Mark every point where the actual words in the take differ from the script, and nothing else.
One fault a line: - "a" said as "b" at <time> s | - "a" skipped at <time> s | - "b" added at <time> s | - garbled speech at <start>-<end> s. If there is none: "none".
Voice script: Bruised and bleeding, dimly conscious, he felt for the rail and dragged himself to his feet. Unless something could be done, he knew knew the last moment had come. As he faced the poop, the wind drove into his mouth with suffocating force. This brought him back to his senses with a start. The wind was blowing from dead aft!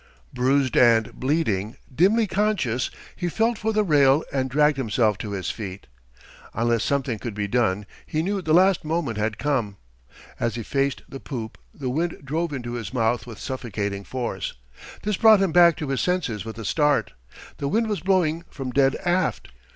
- "knew" skipped at 8.4 s